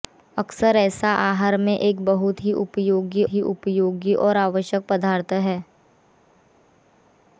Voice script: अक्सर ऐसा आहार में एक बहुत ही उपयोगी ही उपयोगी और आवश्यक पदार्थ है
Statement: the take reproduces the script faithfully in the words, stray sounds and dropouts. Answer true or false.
true